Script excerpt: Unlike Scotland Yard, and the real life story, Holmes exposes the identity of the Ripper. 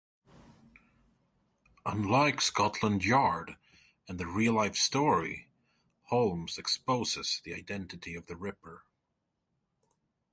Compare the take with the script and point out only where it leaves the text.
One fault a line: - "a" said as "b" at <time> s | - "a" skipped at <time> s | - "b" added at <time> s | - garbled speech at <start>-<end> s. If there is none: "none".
none